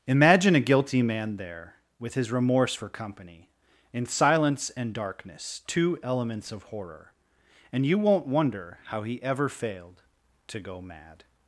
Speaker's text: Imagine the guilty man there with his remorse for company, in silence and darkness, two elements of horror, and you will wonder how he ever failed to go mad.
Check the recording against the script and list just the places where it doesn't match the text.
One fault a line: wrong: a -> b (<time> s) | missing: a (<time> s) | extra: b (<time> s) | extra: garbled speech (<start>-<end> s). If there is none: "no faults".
wrong: the -> a (0.6 s)
wrong: will -> won't (8.0 s)